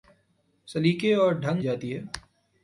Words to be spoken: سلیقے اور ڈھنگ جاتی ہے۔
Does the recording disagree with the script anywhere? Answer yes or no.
no